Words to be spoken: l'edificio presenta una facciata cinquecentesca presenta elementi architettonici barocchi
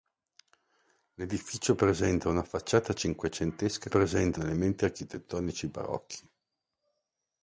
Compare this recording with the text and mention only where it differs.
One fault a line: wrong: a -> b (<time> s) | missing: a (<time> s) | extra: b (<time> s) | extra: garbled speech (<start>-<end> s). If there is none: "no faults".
no faults